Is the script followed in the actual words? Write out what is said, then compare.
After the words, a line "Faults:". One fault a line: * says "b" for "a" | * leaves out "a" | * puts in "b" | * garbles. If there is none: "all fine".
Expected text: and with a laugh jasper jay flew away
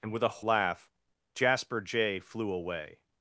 and with a laugh jasper jay flew away
Faults:
all fine